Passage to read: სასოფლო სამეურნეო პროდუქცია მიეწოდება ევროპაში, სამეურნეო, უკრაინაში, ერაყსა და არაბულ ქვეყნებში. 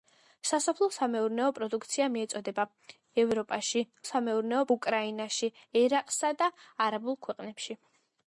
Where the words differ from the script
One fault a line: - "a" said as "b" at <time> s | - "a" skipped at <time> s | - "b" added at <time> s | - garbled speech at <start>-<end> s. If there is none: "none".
none